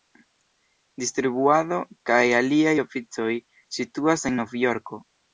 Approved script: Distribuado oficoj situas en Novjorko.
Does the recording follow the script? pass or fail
fail